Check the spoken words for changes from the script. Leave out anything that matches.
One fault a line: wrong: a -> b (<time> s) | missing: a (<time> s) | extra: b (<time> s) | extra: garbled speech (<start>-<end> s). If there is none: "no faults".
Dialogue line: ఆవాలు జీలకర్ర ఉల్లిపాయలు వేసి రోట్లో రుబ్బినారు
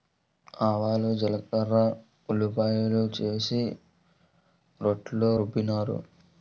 no faults